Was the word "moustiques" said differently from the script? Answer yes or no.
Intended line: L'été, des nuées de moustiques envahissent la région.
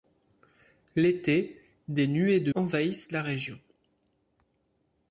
yes